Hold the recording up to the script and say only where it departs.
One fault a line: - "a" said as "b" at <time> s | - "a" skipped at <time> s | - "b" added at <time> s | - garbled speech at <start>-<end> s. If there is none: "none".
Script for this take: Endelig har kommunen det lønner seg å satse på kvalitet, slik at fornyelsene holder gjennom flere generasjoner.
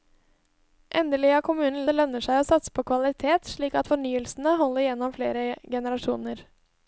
none